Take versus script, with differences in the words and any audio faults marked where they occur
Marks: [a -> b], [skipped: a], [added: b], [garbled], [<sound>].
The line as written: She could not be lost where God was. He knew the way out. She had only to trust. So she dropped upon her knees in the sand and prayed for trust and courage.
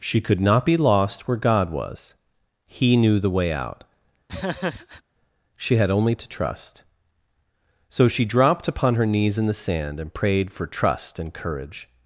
She could not be lost where God was. He knew the way out. [laugh] She had only to trust. So she dropped upon her knees in the sand and prayed for trust and courage.